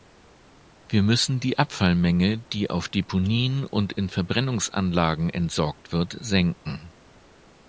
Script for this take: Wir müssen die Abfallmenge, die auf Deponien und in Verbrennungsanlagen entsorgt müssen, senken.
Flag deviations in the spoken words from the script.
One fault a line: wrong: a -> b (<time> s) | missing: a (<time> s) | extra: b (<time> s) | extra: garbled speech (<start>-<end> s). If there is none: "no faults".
wrong: müssen -> wird (5.9 s)